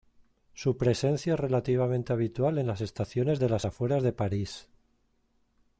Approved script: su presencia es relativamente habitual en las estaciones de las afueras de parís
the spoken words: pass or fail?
pass